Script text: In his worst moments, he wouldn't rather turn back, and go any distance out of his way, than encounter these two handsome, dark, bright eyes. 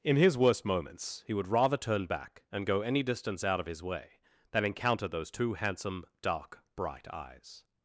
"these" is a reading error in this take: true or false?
true